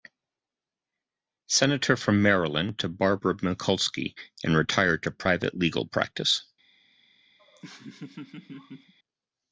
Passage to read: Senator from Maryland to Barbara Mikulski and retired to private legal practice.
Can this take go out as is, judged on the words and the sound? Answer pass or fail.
fail